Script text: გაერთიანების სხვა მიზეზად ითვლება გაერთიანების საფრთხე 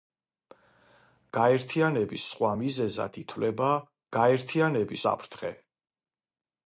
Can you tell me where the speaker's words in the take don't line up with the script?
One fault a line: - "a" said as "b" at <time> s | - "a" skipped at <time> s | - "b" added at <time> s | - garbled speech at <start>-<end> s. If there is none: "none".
none